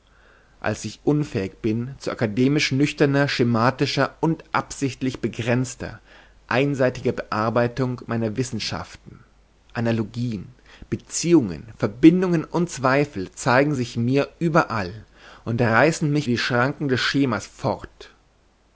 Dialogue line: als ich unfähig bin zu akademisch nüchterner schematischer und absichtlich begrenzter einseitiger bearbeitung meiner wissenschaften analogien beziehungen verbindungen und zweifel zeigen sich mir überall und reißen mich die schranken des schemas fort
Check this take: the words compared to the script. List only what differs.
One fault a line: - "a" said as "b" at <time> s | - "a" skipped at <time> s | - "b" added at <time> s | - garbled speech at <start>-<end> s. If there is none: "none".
none